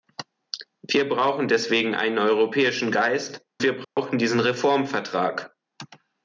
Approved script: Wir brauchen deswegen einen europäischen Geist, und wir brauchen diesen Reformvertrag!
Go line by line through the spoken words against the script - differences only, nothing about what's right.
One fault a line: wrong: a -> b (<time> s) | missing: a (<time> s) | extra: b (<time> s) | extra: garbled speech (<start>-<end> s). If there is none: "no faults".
missing: und (3.5 s)